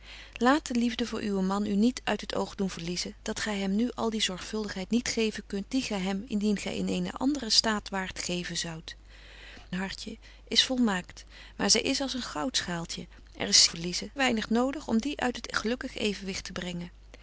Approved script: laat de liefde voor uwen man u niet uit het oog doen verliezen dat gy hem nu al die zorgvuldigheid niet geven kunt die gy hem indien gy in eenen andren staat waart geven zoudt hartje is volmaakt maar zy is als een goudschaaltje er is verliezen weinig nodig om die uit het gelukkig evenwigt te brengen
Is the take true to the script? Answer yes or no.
yes